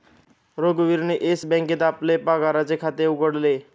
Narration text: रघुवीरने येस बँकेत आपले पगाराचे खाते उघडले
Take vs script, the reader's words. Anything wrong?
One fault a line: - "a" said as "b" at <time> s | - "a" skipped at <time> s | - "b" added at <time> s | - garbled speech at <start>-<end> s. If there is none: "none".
none